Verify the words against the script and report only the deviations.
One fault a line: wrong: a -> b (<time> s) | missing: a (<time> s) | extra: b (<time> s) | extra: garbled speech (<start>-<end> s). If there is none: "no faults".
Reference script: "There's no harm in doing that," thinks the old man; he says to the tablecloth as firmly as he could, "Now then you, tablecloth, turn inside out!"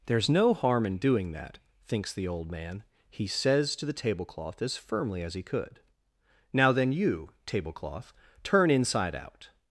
no faults